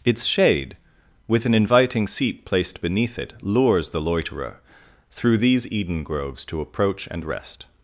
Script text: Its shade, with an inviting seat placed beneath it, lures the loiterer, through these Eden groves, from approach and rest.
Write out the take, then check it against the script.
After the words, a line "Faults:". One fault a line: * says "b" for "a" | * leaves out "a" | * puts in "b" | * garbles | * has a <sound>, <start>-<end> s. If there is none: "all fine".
Its shade, with an inviting seat placed beneath it, lures the loiterer, through these Eden groves, to approach and rest.
Faults:
* says "to" for "from"